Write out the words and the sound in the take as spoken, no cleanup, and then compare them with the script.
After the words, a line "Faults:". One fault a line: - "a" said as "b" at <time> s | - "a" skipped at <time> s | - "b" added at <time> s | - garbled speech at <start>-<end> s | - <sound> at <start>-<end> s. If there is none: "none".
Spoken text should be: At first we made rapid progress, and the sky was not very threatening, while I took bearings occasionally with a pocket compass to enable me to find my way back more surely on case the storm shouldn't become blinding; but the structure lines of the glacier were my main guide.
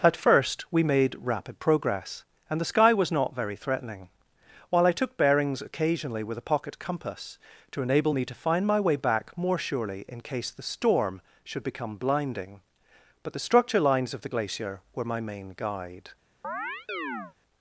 At first we made rapid progress, and the sky was not very threatening, while I took bearings occasionally with a pocket compass to enable me to find my way back more surely in case the storm should become blinding; but the structure lines of the glacier were my main guide.
Faults:
- "on" said as "in" at 10.1 s
- "shouldn't" said as "should" at 11.4 s
- chirp at 16.4-17.3 s